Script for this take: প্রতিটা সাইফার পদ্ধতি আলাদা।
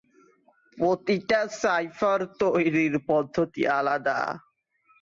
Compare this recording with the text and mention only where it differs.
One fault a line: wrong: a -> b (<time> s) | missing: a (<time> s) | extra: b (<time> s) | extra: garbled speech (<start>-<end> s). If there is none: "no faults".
extra: তৈরির (2.4 s)